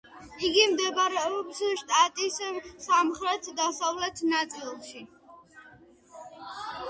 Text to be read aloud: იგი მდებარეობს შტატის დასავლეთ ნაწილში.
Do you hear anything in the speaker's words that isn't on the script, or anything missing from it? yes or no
yes